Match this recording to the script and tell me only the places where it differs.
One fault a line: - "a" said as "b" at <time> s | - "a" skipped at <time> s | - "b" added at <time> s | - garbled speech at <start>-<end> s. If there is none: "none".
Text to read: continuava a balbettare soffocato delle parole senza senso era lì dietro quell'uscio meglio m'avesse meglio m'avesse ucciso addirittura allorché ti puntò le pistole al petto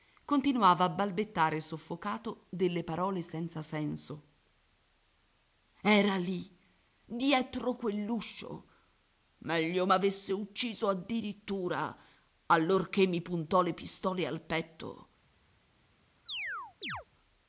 - "meglio m'avesse" skipped at 10.3 s
- "ti" said as "mi" at 13.1 s